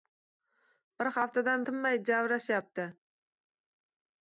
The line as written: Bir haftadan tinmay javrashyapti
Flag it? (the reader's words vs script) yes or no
no